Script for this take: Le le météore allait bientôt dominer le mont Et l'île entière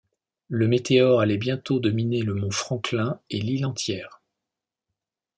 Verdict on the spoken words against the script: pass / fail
fail